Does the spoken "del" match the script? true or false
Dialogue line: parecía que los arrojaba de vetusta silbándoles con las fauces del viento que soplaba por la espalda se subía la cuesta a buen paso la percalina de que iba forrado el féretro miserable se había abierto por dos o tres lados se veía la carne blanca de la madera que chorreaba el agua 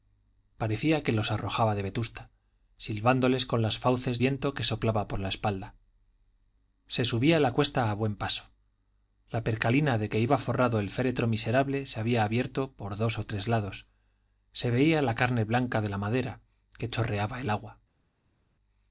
false